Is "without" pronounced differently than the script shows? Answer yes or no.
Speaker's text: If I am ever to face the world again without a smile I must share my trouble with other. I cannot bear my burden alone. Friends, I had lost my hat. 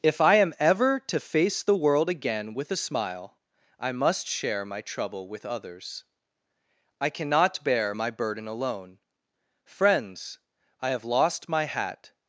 yes